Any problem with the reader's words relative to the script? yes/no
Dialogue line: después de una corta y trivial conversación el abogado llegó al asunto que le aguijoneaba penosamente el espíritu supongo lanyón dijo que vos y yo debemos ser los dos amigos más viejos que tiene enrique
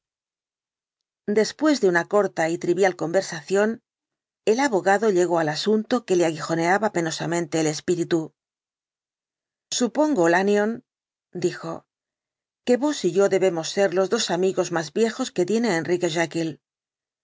no